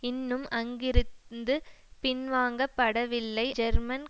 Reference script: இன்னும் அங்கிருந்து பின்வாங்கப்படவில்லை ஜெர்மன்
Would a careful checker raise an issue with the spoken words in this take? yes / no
no